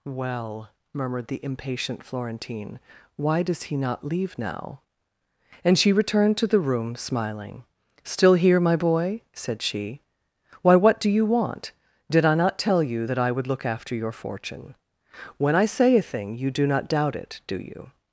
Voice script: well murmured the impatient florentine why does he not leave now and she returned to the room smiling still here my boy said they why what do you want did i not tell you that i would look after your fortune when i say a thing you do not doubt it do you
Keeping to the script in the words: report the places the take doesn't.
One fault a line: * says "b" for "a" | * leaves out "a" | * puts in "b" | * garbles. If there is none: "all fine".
* says "she" for "they"